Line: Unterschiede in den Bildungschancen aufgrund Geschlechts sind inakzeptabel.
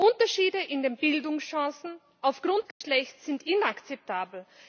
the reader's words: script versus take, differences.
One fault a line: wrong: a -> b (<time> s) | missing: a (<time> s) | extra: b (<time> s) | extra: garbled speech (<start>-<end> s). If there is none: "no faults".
no faults